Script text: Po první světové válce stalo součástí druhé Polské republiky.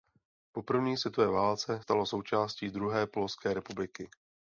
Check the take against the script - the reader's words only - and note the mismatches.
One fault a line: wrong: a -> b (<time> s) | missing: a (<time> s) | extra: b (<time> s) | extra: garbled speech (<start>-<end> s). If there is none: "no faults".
no faults